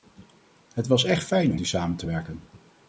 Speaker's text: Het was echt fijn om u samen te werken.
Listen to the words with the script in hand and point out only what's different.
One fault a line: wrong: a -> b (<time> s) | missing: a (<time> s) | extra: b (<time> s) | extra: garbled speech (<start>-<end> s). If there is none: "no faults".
no faults